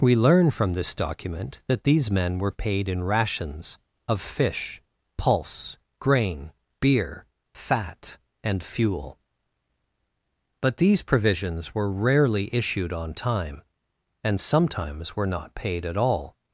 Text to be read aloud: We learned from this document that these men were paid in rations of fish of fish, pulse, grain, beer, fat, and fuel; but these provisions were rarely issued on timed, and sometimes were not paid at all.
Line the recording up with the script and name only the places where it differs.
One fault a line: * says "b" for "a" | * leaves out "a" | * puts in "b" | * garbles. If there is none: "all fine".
* says "learn" for "learned"
* leaves out "of fish"
* says "time" for "timed"